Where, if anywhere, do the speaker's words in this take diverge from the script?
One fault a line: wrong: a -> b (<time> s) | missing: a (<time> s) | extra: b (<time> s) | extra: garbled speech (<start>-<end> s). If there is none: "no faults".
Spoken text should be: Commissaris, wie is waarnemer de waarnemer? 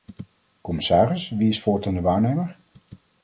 wrong: waarnemer -> voortaan (1.6 s)